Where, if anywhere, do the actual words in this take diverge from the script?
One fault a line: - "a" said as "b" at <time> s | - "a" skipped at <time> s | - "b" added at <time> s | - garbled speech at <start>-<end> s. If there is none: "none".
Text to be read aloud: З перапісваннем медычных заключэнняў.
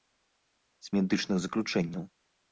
- "перапісваннем" skipped at 0.9 s